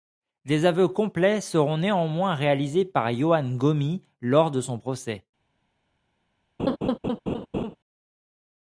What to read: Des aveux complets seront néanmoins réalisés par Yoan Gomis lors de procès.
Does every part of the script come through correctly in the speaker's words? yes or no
no